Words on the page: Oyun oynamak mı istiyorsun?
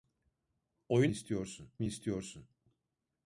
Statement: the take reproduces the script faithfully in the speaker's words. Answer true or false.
false